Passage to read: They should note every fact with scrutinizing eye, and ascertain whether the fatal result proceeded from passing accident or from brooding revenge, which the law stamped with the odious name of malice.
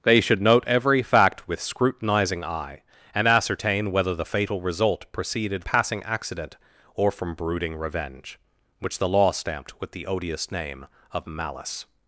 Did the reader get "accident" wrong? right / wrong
right